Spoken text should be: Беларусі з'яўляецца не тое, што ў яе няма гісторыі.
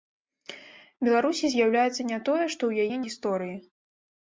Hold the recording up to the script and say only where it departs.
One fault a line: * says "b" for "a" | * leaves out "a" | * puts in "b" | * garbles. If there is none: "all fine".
* leaves out "няма"